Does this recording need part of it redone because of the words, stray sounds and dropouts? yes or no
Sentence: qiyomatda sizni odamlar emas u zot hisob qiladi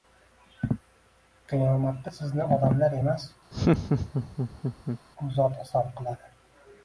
yes